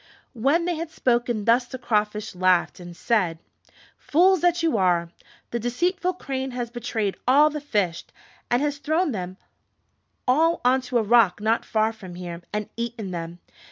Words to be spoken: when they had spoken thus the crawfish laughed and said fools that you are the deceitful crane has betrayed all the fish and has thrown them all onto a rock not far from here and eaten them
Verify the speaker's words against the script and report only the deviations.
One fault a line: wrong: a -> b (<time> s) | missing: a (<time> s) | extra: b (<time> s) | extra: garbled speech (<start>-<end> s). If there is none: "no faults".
no faults